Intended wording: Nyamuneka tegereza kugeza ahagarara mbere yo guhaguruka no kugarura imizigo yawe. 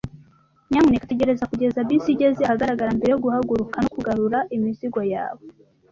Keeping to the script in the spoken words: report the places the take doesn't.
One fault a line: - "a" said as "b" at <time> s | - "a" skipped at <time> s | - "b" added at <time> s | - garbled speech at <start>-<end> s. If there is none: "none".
- "bisi igeze" added at 1.9 s